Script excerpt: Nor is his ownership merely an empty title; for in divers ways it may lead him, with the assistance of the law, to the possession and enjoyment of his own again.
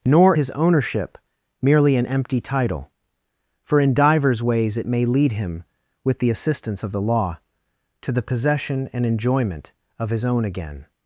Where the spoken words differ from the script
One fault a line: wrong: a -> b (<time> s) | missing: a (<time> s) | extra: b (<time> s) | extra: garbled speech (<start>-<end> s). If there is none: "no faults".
missing: is (0.3 s)